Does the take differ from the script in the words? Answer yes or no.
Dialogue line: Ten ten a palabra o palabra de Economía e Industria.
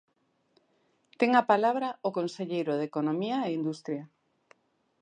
yes